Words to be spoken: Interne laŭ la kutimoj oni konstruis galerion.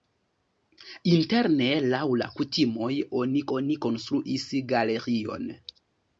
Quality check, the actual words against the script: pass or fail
fail